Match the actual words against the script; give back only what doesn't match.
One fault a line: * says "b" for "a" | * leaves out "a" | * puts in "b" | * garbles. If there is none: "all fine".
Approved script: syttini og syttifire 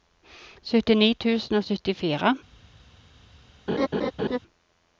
* puts in "tusen"